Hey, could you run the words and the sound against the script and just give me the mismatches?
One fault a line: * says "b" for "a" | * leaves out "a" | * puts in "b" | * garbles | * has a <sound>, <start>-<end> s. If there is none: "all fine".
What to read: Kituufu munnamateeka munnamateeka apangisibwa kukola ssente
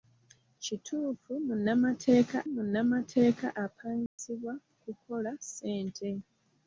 * has a dropout, 4.1-4.2 s